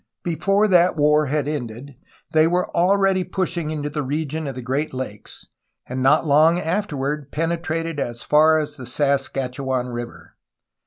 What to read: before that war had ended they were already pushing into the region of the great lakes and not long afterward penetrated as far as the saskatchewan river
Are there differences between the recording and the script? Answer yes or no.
no